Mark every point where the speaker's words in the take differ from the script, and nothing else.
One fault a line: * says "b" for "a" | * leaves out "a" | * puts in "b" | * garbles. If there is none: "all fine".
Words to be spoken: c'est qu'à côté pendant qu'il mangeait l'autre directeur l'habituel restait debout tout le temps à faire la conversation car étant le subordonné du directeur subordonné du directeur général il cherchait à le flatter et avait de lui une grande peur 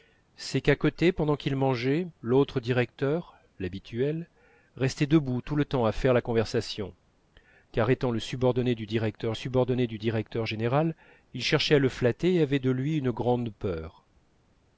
all fine